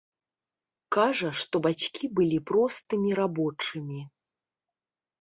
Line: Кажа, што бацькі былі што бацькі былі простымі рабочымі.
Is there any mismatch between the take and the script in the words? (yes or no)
yes